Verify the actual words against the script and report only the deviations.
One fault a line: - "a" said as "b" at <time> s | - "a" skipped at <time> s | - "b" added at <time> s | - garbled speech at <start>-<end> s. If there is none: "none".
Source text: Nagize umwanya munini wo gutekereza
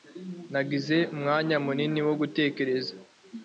none